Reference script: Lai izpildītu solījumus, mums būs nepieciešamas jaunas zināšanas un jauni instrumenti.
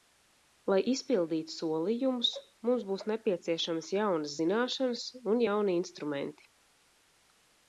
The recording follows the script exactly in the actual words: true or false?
true